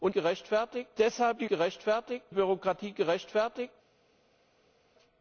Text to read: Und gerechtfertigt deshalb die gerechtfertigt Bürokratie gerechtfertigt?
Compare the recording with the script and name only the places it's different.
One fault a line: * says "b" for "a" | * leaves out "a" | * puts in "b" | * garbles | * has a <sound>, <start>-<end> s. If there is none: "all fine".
all fine